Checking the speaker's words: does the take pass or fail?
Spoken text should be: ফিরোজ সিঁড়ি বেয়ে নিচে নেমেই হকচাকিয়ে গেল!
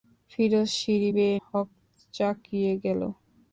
fail